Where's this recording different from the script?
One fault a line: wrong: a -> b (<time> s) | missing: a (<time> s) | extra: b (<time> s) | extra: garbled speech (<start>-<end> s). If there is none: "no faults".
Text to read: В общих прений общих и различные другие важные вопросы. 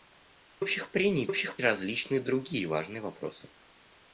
no faults